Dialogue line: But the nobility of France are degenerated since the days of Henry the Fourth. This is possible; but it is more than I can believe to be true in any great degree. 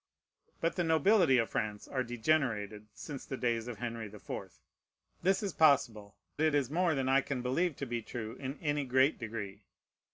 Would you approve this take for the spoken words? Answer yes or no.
no